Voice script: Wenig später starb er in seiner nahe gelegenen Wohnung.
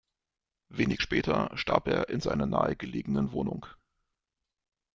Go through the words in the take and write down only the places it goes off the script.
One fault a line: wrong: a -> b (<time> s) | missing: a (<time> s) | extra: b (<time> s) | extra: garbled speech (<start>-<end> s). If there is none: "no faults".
no faults